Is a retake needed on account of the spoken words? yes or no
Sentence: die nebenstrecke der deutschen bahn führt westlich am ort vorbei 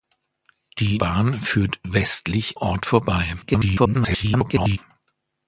yes